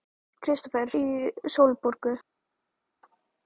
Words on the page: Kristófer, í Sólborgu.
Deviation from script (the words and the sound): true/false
false